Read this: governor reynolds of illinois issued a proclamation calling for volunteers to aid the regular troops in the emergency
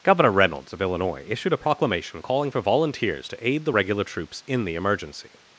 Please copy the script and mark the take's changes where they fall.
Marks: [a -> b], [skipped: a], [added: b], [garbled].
governor reynolds of illinois issued a proclamation calling for volunteers to aid the regular troops in the emergency